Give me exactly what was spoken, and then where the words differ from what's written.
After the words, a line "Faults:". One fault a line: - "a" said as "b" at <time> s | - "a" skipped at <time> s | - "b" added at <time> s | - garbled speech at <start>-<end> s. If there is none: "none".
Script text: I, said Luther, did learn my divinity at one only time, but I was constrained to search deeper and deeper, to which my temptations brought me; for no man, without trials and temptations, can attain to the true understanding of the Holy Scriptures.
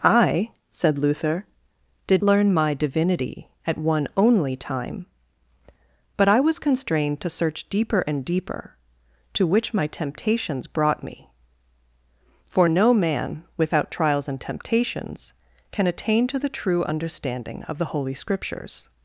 I, said Luther, did learn my divinity at one only time, but I was constrained to search deeper and deeper, to which my temptations brought me; for no man, without trials and temptations, can attain to the true understanding of the Holy Scriptures.
Faults:
none